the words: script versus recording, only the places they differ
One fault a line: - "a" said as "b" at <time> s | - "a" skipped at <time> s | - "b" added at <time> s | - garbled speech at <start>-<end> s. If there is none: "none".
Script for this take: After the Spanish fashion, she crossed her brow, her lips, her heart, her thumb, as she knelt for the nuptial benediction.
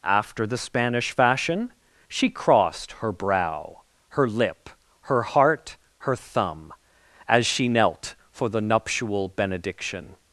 - "lips" said as "lip" at 4.3 s